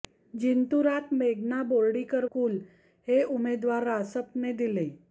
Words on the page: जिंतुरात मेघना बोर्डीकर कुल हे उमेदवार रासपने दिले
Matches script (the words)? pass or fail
pass